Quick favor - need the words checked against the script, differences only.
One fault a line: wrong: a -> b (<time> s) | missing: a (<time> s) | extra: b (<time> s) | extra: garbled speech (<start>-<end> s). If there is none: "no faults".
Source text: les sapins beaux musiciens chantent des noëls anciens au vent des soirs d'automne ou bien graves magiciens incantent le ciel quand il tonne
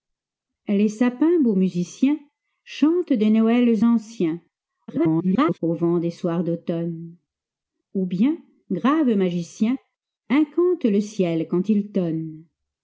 extra: garbled speech (4.9-5.6 s)